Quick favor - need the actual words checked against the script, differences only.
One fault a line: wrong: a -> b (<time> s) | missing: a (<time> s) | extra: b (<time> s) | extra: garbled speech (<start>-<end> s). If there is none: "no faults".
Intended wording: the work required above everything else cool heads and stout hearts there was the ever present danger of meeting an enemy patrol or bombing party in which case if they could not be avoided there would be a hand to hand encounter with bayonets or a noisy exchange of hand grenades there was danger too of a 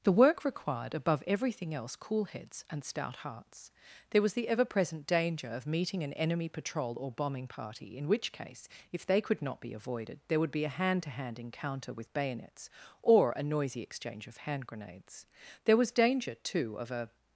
no faults